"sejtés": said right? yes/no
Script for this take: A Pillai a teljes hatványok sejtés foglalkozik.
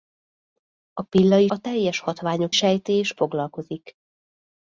yes